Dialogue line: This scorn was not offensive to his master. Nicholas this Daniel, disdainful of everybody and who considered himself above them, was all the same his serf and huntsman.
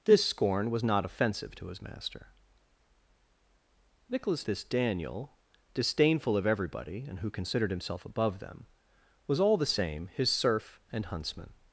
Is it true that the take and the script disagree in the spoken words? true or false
false